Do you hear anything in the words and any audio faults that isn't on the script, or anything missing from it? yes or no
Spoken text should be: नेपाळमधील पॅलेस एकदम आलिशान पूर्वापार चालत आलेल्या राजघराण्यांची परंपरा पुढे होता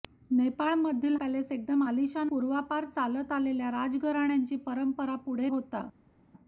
no